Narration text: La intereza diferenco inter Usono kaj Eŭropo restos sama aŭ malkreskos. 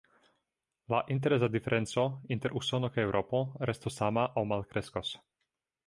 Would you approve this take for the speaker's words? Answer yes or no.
yes